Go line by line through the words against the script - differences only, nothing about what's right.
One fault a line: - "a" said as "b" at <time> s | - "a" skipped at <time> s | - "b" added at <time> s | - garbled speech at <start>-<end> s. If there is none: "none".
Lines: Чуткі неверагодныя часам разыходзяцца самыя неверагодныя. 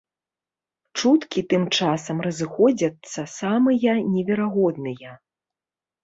- "неверагодныя" said as "тым" at 1.5 s